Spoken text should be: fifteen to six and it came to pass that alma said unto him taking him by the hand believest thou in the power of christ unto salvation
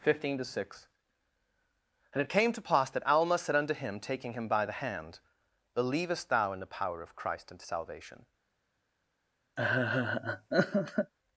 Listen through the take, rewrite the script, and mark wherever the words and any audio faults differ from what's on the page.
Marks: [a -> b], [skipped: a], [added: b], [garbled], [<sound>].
fifteen to six and it came to pass that alma said unto him taking him by the hand believest thou in the power of christ unto salvation [laugh]